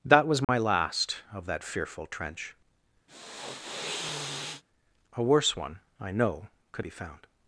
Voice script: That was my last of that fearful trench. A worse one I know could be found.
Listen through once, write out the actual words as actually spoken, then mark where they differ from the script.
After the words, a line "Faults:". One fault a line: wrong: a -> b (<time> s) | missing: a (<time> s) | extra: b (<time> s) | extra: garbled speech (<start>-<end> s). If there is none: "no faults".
That was my last of that fearful trench. A worse one I know could be found.
Faults:
no faults